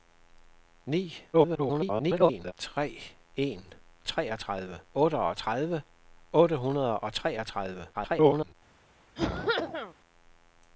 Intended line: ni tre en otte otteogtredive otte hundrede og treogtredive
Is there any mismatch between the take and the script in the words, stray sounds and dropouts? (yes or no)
yes